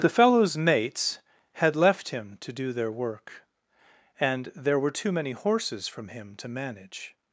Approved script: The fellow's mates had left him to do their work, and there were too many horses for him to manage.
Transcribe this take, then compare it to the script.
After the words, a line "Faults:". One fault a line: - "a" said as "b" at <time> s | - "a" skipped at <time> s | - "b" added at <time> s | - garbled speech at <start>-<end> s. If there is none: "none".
The fellow's mates had left him to do their work, and there were too many horses from him to manage.
Faults:
- "for" said as "from" at 5.9 s